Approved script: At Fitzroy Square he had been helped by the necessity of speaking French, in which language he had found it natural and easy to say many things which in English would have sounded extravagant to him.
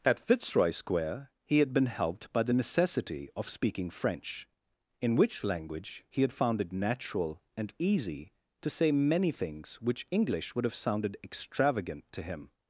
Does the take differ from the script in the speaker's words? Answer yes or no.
yes